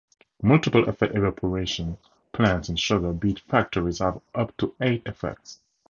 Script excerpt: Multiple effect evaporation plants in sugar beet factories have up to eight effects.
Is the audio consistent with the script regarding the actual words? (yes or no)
yes